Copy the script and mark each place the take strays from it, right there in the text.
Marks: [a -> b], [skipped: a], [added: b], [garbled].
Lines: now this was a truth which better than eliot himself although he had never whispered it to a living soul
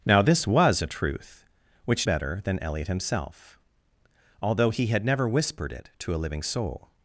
now this was a truth which better than eliot himself although he had never whispered it to a living soul